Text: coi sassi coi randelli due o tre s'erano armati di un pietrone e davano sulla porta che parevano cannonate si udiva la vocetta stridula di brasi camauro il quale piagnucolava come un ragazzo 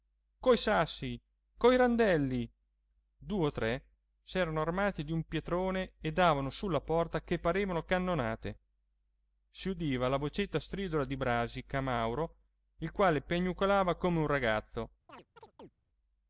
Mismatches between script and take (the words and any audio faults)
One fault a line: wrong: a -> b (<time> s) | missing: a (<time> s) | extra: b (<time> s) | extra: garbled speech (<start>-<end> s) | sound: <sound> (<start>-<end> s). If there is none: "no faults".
sound: chirp (15.1-15.7 s)